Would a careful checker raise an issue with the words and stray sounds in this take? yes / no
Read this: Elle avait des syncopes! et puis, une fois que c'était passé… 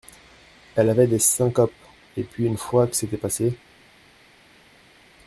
no